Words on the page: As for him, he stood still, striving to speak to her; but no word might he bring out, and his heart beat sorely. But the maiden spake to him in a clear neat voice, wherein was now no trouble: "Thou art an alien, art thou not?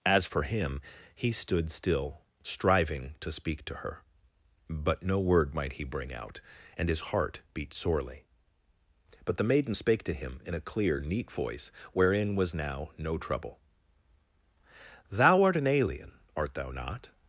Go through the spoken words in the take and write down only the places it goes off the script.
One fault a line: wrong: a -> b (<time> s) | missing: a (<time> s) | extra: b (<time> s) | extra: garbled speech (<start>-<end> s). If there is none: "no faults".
no faults